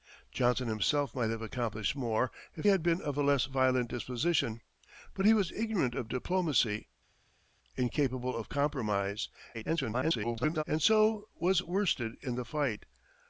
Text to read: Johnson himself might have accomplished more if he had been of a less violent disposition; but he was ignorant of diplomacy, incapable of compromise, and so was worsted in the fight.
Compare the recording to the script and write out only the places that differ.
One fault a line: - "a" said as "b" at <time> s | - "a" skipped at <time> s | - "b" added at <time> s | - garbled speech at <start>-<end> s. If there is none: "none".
- "he" skipped at 2.6 s
- garbled speech at 9.5-10.6 s